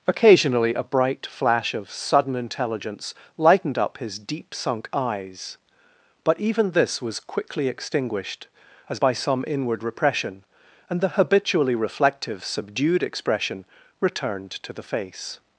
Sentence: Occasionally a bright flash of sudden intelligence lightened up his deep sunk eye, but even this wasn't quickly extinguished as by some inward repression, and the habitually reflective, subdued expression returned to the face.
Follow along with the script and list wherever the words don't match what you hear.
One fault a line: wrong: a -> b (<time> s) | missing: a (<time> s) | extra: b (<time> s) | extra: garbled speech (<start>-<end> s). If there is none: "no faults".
wrong: eye -> eyes (4.9 s)
wrong: wasn't -> was (7.0 s)